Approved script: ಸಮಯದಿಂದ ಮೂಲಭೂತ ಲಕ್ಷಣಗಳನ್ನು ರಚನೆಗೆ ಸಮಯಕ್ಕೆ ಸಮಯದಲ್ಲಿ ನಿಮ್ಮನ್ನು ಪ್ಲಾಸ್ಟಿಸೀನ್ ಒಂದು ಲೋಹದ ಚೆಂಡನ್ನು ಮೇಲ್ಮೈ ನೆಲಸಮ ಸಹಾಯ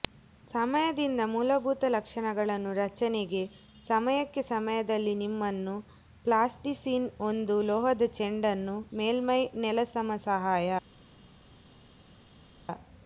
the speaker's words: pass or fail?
pass